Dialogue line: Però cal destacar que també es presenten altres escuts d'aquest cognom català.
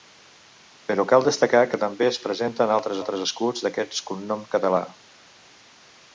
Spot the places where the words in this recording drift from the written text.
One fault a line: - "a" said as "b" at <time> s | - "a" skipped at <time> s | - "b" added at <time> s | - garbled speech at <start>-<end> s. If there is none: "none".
- "altres" added at 3.0 s